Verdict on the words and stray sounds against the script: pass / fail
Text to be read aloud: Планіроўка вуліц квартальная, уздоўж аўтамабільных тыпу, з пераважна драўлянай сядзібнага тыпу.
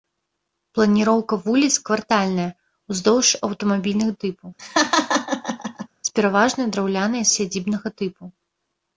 fail